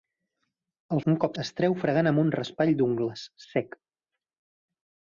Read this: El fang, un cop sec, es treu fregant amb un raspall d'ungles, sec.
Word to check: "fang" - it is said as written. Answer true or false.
false